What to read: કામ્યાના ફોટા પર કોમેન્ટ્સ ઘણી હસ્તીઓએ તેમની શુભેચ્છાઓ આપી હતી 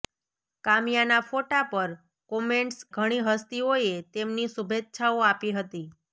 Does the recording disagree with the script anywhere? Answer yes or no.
no